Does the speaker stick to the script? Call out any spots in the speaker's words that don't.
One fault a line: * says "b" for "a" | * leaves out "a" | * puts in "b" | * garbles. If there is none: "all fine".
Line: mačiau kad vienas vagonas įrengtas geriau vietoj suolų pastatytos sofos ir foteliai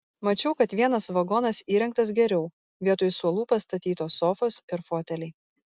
all fine